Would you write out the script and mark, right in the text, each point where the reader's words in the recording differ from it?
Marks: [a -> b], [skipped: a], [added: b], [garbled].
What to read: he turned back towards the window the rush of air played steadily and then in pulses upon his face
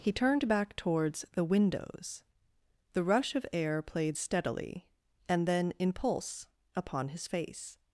he turned back towards the [window -> windows] the rush of air played steadily and then in [pulses -> pulse] upon his face